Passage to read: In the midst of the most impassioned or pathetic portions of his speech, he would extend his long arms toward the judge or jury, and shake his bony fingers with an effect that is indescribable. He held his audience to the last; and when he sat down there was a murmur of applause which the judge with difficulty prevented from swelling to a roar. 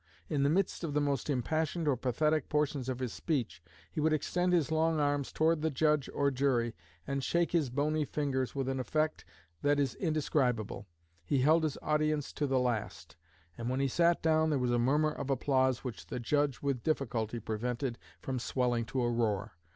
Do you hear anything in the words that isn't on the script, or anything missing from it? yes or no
no